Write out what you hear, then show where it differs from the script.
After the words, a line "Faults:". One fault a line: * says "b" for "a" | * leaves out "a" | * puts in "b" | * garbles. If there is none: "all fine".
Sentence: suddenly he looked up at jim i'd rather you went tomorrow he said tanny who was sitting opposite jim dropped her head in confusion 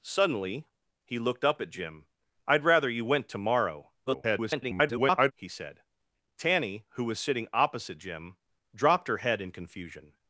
suddenly he looked up at jim i'd rather you went tomorrow [garbled] he said tanny who was sitting opposite jim dropped her head in confusion
Faults:
* garbles